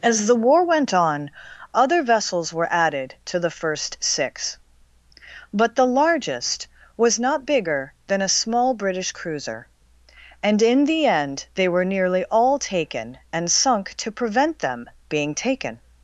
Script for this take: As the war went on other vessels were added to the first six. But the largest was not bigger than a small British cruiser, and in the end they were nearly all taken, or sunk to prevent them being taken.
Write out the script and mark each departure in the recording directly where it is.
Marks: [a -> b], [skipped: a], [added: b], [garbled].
As the war went on other vessels were added to the first six. But the largest was not bigger than a small British cruiser, and in the end they were nearly all taken, [or -> and] sunk to prevent them being taken.